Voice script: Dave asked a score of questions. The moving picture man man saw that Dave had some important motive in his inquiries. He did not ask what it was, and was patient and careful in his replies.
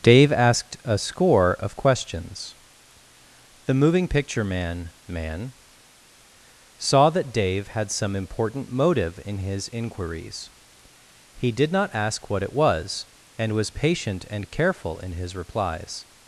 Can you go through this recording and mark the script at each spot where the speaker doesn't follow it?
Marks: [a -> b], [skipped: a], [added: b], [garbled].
Dave asked a score of questions. The moving picture man man saw that Dave had some important motive in his inquiries. He did not ask what it was, and was patient and careful in his replies.